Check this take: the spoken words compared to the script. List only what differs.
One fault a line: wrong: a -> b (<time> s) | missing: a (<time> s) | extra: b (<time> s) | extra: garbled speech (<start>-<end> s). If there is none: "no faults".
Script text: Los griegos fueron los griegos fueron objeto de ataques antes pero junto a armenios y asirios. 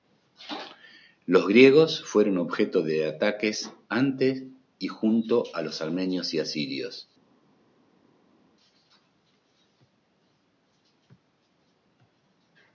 missing: los griegos fueron (2.4 s)
wrong: pero -> y (4.8 s)
extra: los (5.6 s)